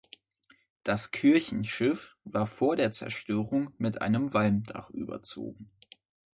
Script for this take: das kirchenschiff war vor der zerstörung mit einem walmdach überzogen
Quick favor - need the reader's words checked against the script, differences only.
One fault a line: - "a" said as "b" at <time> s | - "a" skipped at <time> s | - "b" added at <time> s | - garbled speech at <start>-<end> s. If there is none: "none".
none